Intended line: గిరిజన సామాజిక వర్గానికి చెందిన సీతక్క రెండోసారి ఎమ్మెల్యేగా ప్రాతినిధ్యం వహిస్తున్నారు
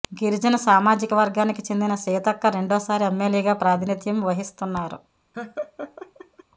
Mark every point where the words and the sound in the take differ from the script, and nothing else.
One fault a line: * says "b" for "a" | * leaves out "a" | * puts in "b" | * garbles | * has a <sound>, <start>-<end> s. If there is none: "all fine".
* has a laugh, 5.3-6.4 s